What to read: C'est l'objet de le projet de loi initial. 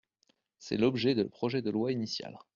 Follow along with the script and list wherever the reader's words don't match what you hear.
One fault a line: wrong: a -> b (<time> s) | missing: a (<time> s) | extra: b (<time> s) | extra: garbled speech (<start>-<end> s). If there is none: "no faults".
no faults